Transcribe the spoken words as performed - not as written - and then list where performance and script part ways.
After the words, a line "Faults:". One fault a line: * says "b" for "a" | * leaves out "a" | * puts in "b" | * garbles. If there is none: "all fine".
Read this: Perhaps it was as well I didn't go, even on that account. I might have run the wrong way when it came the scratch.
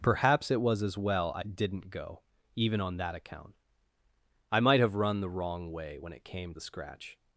Perhaps it was as well I didn't go, even on that account. I might have run the wrong way when it came the scratch.
Faults:
all fine